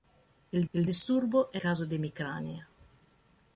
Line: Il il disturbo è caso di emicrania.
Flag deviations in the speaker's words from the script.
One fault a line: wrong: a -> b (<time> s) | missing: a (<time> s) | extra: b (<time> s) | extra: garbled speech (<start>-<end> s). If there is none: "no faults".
no faults